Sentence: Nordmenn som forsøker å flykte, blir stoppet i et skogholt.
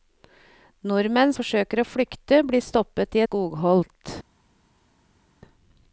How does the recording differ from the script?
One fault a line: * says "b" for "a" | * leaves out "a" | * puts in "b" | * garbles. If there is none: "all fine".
* leaves out "som"
* leaves out "et"